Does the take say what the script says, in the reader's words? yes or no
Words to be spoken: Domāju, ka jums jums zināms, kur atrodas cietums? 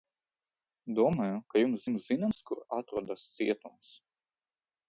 yes